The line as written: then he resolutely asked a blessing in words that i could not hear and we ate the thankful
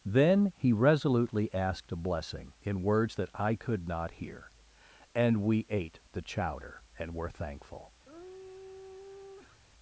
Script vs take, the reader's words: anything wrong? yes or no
yes